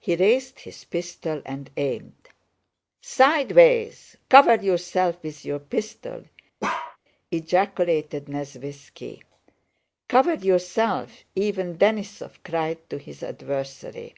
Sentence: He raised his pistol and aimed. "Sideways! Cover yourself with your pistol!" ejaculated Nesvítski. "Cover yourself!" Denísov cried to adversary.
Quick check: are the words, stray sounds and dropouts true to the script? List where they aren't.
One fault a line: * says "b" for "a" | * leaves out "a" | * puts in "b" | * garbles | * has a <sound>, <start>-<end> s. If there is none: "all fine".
* has a bark, 6.6-7.0 s
* puts in "even"
* puts in "his"